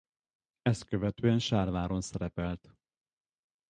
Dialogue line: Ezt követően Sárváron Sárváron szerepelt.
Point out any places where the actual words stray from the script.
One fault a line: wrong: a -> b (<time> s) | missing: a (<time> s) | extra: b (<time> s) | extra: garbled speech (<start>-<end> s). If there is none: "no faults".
missing: Sárváron (2.0 s)